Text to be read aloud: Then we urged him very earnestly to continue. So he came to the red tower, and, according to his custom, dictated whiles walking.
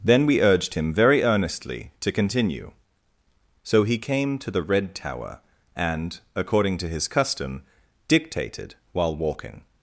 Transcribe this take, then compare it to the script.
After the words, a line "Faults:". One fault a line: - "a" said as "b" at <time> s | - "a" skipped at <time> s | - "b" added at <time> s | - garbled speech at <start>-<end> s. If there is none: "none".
Then we urged him very earnestly to continue. So he came to the red tower, and, according to his custom, dictated while walking.
Faults:
- "whiles" said as "while" at 8.9 s